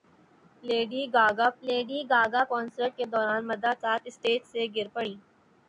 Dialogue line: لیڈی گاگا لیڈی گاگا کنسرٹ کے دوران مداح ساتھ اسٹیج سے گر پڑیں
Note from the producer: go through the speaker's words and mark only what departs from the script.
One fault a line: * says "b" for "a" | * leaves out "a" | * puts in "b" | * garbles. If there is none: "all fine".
all fine